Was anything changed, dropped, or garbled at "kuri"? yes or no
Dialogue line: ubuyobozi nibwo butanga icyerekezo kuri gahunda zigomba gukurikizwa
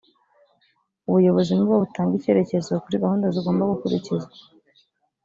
no